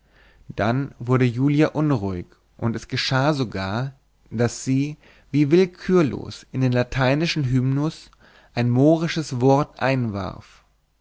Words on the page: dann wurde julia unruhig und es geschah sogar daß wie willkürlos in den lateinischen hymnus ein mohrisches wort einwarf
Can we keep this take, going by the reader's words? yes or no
no